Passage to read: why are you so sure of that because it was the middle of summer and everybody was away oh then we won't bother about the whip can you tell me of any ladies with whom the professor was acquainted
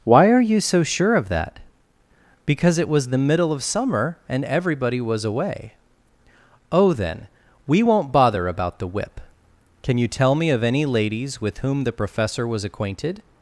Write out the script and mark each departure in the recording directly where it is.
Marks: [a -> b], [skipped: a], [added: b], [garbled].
why are you so sure of that because it was the middle of summer and everybody was away oh then we won't bother about the whip can you tell me of any ladies with whom the professor was acquainted